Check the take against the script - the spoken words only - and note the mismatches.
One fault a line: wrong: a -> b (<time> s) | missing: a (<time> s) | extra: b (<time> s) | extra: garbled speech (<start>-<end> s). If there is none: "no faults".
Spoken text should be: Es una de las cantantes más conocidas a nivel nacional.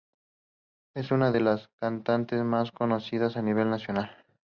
no faults